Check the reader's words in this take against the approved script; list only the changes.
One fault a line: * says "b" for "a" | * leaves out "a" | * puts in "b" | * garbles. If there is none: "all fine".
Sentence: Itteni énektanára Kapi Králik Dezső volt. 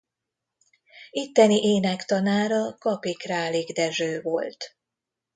all fine